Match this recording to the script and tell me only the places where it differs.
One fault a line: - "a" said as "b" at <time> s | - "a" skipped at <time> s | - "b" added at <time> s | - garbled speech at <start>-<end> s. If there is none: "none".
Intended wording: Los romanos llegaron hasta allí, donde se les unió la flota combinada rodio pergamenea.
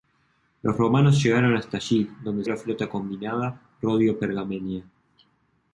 - "se les unió" skipped at 2.4 s